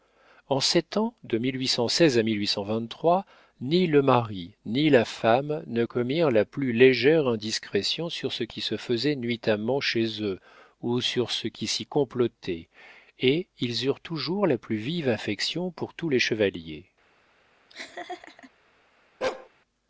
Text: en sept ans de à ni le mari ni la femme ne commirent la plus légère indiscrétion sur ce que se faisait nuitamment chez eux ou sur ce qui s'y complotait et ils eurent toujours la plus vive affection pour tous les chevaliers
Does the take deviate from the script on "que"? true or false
true